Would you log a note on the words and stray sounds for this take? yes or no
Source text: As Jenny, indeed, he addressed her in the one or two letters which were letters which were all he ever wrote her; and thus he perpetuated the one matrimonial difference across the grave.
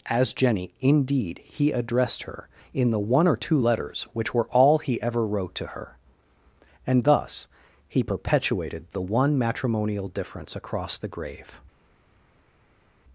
yes